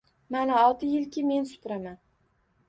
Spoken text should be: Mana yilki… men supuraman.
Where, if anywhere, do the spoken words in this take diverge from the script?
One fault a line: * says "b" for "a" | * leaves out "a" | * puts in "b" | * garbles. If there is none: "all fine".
* puts in "olti"